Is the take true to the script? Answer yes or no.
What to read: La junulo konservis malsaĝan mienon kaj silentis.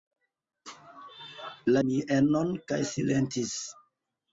no